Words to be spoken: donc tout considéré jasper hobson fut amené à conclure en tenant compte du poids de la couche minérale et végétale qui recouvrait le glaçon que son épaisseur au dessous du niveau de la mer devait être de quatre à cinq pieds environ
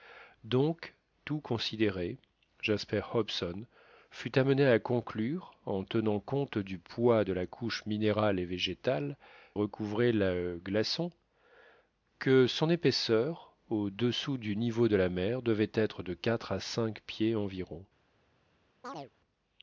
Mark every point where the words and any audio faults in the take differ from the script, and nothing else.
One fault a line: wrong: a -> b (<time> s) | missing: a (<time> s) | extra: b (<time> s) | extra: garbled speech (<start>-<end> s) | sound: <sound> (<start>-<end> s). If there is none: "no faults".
missing: qui (9.2 s)
sound: chirp (18.8-19.1 s)